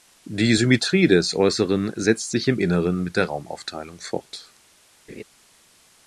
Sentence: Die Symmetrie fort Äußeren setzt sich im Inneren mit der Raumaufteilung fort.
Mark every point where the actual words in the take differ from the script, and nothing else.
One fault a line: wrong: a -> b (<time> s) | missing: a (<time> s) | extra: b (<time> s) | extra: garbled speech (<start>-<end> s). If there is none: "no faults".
wrong: fort -> des (1.1 s)